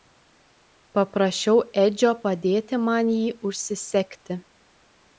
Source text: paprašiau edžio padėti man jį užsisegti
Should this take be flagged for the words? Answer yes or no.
no